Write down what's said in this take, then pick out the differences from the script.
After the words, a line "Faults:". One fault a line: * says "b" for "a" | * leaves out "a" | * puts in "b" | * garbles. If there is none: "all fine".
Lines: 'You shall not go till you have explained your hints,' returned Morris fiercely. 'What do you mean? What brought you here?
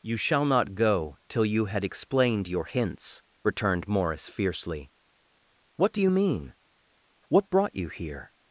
'You shall not go till you had explained your hints,' returned Morris fiercely. 'What do you mean? What brought you here?
Faults:
* says "had" for "have"